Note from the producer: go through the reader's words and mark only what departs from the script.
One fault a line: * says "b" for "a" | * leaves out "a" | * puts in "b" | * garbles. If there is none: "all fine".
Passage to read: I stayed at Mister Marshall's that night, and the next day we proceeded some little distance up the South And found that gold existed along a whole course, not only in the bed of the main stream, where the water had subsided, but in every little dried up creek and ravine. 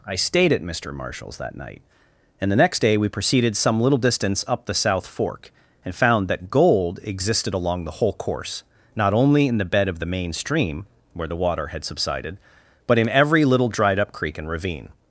* puts in "Fork"
* says "the" for "a"